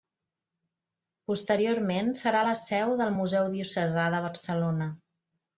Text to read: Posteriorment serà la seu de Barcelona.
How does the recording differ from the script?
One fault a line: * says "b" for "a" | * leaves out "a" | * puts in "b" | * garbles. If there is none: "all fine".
* puts in "del Museu Diocesà"